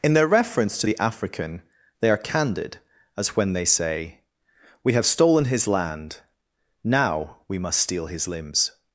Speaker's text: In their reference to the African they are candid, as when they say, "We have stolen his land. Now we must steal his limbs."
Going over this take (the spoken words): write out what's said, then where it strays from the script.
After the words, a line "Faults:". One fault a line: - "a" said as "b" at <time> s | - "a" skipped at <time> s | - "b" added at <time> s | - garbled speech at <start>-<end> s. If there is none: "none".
In their reference to the African they are candid, as when they say, "We have stolen his land. Now we must steal his limbs."
Faults:
none